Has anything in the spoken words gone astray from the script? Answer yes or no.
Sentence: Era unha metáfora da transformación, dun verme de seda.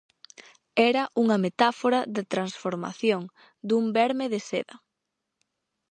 no